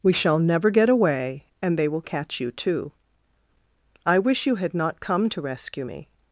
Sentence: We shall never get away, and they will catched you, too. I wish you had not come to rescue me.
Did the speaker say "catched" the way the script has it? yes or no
no